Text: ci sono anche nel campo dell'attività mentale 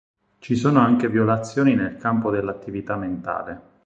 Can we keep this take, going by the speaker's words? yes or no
no